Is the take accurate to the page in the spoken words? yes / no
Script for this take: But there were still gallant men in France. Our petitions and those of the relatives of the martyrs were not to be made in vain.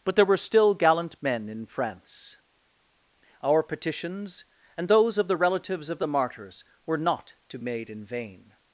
no